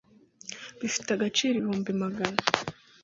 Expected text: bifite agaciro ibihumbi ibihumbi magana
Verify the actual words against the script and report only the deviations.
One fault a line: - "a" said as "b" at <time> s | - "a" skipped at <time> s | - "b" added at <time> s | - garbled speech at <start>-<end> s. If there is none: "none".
- "ibihumbi" skipped at 1.9 s